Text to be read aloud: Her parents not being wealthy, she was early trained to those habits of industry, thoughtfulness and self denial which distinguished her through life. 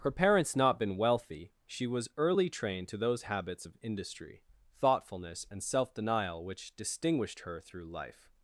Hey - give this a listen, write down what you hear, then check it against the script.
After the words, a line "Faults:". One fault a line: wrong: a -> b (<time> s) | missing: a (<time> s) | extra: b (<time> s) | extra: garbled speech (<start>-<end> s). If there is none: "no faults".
Her parents not been wealthy, she was early trained to those habits of industry, thoughtfulness and self denial which distinguished her through life.
Faults:
wrong: being -> been (0.8 s)